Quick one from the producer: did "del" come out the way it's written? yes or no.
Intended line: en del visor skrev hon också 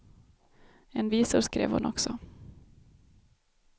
no